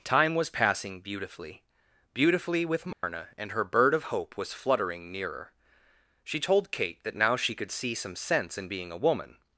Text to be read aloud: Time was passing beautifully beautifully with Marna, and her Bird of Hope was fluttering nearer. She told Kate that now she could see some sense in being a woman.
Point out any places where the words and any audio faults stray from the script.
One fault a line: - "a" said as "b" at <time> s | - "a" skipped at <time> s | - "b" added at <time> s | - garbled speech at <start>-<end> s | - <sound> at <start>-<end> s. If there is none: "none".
- dropout at 2.9-3.0 s